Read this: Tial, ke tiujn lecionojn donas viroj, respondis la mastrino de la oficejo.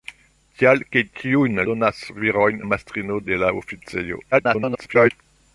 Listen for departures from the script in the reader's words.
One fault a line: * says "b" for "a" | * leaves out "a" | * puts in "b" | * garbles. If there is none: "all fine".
* leaves out "lecionojn"
* leaves out "respondis"
* garbles